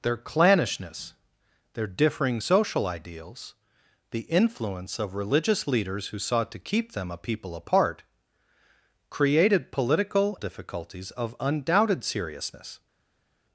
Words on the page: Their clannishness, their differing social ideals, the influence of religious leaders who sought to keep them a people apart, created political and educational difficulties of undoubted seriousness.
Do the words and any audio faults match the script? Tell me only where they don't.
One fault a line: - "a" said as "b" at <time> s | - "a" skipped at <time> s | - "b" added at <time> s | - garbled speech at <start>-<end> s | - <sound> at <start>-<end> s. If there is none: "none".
- "and educational" skipped at 10.4 s